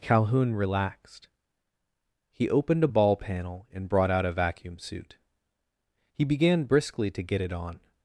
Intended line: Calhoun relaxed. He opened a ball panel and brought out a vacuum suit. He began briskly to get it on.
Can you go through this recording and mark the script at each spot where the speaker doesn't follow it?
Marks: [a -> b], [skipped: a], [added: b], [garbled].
Calhoun relaxed. He opened a ball panel and brought out a vacuum suit. He began briskly to get it on.